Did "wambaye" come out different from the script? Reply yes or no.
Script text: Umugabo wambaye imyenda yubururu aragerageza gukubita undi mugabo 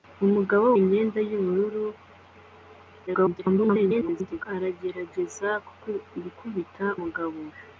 yes